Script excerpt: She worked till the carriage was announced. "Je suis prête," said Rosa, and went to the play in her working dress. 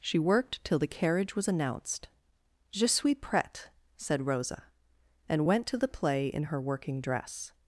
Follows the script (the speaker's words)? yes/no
yes